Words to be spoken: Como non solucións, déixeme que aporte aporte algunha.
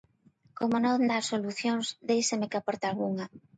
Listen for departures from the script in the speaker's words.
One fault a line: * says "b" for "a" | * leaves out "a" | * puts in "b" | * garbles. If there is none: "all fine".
* puts in "dá"
* leaves out "aporte"